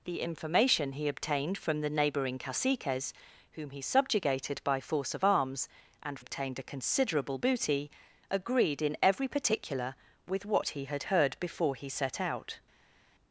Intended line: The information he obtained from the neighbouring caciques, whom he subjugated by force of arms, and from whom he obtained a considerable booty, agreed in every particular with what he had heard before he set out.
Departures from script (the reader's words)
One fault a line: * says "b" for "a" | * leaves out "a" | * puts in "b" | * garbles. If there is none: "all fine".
* leaves out "from whom he"